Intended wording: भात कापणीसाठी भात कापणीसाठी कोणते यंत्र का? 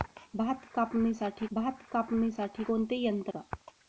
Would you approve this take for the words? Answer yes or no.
yes